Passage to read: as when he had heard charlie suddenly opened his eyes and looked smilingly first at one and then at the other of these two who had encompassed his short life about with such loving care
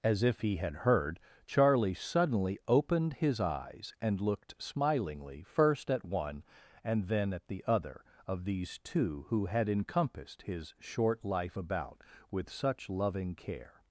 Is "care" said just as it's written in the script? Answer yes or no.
yes